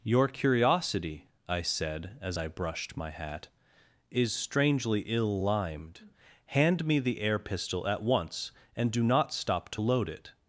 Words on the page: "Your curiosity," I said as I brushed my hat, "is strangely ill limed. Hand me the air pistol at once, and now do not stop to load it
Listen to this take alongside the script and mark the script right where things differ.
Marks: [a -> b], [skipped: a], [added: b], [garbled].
"Your curiosity," I said as I brushed my hat, "is strangely ill limed. Hand me the air pistol at once, and [skipped: now] do not stop to load it